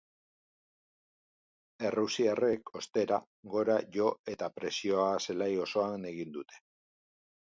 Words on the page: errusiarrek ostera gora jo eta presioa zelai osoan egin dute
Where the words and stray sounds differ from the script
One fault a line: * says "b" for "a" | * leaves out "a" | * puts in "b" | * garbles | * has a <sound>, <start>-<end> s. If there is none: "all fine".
all fine